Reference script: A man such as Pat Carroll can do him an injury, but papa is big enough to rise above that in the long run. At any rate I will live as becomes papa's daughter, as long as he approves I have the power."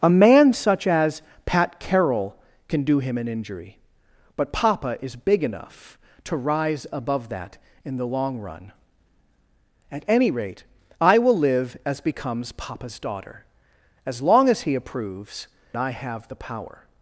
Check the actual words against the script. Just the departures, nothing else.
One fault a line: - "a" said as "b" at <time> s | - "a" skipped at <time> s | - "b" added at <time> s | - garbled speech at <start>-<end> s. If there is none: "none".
none